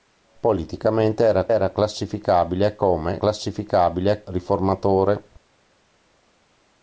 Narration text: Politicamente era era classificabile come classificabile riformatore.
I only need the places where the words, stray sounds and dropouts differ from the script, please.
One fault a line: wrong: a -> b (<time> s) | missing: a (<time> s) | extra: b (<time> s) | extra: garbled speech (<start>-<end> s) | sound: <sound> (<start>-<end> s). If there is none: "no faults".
no faults